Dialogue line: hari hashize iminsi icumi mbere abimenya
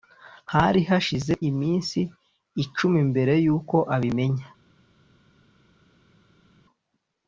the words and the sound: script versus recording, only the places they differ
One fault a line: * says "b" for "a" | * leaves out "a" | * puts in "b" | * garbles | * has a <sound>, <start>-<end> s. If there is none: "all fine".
* puts in "yuko"